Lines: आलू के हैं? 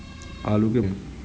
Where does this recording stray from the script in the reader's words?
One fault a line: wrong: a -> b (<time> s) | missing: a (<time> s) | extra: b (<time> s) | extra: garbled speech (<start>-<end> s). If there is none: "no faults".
no faults